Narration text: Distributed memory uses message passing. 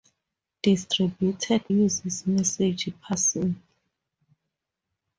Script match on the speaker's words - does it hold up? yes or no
no